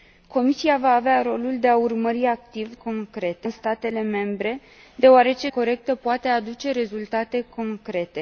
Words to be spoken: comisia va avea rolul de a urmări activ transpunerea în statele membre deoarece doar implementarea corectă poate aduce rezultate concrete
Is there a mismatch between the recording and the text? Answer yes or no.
yes